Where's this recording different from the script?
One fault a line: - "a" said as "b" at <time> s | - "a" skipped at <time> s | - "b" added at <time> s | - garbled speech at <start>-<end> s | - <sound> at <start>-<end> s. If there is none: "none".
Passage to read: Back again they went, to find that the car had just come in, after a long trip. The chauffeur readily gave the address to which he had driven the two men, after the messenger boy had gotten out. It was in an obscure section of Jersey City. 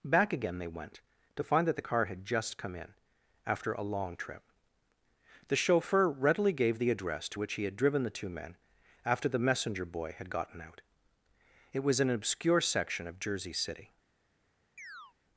- "in" skipped at 12.0 s
- chirp at 14.8-15.1 s